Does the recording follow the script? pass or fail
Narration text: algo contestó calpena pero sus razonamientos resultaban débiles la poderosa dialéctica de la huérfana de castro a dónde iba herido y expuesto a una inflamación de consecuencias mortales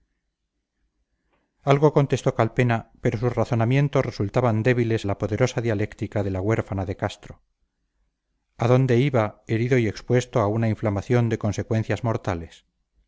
pass